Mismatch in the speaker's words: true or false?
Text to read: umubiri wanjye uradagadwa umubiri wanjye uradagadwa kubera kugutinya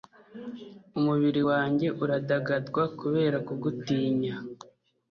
true